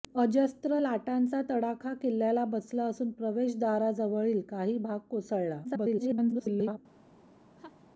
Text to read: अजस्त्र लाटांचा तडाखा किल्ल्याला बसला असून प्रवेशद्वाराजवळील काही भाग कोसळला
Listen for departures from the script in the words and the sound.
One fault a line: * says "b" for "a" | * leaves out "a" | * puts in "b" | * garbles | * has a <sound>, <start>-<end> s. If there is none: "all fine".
* garbles
* has a laugh, 7.6-7.9 s